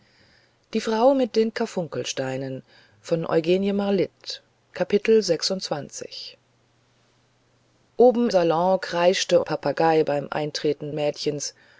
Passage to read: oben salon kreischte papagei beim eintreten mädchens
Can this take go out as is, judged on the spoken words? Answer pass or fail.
pass